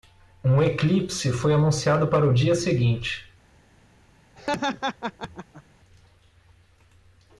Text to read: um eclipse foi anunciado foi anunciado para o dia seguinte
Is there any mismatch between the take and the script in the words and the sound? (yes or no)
yes